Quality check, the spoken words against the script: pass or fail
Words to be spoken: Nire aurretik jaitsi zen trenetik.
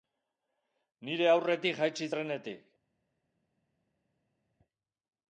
fail